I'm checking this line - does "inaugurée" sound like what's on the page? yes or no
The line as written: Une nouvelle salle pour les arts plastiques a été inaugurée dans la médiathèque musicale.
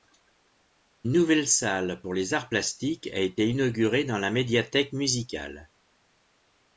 yes